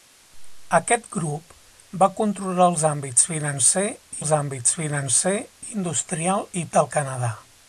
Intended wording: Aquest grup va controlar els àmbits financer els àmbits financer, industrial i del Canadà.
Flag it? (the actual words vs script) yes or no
no